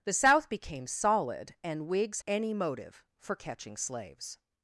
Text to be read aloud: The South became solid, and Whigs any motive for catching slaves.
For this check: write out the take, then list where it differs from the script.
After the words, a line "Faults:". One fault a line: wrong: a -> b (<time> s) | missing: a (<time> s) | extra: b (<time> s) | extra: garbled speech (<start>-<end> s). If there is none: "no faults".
The South became solid, and Whigs any motive for catching slaves.
Faults:
no faults